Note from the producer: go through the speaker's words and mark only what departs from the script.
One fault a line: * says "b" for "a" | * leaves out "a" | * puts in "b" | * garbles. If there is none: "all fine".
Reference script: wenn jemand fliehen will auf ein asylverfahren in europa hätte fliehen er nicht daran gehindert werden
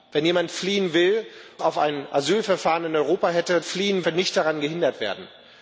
all fine